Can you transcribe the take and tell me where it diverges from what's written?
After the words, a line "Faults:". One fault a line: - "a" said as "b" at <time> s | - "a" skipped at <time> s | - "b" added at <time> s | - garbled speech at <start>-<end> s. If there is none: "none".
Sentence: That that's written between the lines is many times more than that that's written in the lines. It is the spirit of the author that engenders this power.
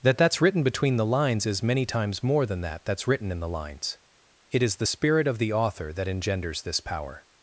That that's written between the lines is many times more than that that's written in the lines. It is the spirit of the author that engenders this power.
Faults:
none